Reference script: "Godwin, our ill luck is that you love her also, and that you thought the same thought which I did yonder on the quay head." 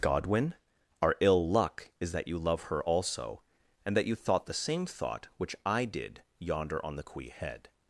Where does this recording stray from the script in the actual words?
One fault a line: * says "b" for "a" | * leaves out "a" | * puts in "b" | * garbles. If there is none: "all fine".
all fine